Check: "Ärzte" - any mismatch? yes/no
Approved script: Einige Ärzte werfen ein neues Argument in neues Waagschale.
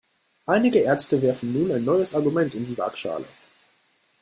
no